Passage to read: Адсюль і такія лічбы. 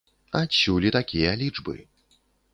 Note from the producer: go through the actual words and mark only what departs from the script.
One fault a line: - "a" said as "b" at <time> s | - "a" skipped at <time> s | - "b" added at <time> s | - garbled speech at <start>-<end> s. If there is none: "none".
none